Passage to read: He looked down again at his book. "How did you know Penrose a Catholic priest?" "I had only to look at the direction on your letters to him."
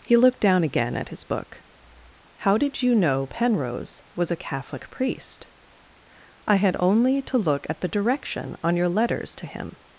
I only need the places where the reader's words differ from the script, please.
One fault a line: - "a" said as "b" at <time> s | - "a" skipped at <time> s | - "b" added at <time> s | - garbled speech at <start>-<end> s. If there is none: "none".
- "was" added at 4.2 s